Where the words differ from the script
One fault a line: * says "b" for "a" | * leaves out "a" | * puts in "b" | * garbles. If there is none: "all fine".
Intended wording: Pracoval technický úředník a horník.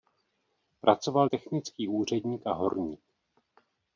all fine